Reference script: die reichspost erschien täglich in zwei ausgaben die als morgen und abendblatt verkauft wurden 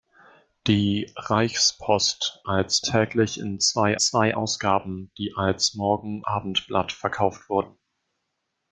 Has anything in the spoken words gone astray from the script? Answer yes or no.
yes